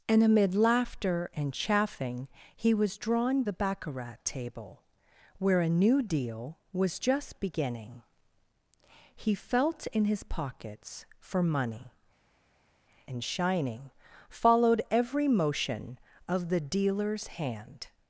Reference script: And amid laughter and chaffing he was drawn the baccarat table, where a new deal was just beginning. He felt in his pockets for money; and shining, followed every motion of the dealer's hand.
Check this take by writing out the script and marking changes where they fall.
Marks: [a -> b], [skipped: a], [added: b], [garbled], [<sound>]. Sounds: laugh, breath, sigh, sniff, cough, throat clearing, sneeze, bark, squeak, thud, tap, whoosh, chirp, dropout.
And amid laughter and chaffing he was drawn the baccarat table, where a new deal was just beginning. He felt in his pockets for money; and shining, followed every motion of the dealer's hand.